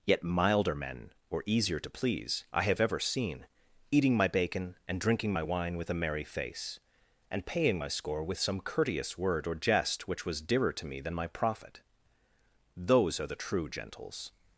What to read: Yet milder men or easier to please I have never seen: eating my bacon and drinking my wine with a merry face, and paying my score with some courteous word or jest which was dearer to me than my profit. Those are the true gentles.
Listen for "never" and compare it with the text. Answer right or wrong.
wrong